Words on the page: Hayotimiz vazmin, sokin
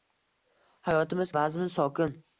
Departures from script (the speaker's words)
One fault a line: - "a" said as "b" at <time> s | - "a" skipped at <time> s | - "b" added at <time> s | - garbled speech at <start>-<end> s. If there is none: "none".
none